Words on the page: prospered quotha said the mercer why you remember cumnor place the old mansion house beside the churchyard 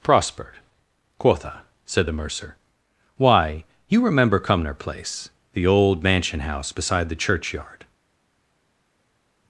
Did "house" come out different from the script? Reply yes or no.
no